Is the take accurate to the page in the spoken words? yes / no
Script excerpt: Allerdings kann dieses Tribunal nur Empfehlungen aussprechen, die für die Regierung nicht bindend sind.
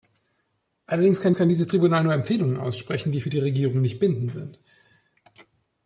no